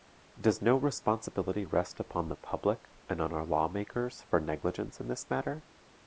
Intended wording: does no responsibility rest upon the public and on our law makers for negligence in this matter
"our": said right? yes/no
yes